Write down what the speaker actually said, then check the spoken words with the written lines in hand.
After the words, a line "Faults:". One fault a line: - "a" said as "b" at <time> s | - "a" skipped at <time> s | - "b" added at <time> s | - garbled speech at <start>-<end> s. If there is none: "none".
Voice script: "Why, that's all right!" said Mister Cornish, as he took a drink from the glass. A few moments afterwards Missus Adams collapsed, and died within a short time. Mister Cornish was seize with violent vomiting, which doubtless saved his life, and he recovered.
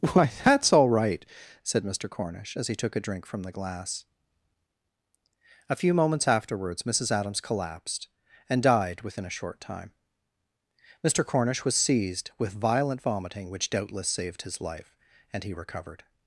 "Why, that's all right!" said Mister Cornish, as he took a drink from the glass. A few moments afterwards Missus Adams collapsed, and died within a short time. Mister Cornish was seized with violent vomiting, which doubtless saved his life, and he recovered.
Faults:
- "seize" said as "seized" at 11.8 s